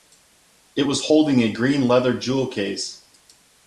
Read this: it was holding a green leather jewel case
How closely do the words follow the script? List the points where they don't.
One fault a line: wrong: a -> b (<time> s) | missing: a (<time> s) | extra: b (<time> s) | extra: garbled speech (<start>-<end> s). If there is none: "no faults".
no faults